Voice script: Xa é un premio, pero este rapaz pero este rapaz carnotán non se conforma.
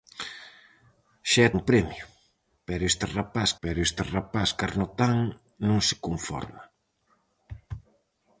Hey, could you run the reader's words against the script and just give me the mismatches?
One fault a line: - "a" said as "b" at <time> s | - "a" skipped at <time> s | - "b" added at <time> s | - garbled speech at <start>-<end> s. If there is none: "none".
none